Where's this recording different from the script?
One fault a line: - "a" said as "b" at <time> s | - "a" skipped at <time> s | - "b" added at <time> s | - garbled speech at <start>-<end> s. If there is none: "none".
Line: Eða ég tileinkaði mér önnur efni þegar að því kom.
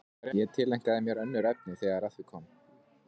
none